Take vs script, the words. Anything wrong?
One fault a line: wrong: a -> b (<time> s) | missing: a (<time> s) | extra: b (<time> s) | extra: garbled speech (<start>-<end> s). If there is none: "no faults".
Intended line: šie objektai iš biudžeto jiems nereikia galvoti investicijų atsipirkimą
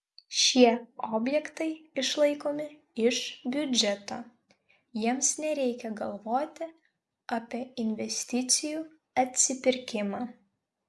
extra: išlaikomi (2.0 s)
extra: apie (7.4 s)